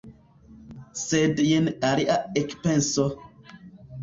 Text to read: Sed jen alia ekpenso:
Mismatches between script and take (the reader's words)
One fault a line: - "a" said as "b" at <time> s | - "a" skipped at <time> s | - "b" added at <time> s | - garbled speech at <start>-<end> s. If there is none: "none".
none